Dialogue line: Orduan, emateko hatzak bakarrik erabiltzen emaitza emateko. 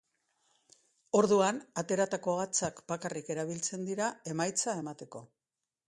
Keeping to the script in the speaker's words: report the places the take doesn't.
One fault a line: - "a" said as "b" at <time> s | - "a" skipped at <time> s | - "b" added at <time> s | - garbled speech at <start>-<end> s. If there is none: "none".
- "emateko" said as "ateratako" at 1.8 s
- "dira" added at 3.9 s